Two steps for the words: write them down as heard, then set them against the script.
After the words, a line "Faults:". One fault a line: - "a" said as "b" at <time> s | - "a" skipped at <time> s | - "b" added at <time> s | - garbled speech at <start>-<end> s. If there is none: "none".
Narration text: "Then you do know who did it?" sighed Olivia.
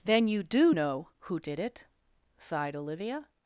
"Then you do know who did it?" sighed Olivia.
Faults:
none